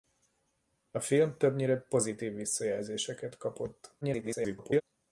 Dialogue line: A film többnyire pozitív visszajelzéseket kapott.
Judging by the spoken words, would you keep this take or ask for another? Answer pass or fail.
fail